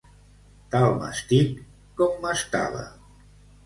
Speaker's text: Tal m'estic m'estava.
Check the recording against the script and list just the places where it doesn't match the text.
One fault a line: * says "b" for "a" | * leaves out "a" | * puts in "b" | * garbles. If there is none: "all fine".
* puts in "com"